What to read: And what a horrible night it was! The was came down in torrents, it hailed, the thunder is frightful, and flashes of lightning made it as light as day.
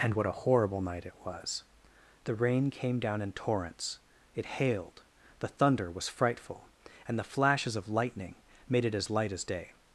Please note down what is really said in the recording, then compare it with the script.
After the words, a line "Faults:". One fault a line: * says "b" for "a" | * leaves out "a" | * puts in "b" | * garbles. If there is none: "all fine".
And what a horrible night it was! The rain came down in torrents, it hailed, the thunder was frightful, and the flashes of lightning made it as light as day.
Faults:
* says "rain" for "was"
* says "was" for "is"
* puts in "the"